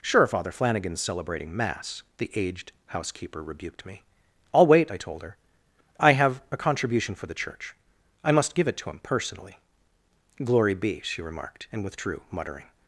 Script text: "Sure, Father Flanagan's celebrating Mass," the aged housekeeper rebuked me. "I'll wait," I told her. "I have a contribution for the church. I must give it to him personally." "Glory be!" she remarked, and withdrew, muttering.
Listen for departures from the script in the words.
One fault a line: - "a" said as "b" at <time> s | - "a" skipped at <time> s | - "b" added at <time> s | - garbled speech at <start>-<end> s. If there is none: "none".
none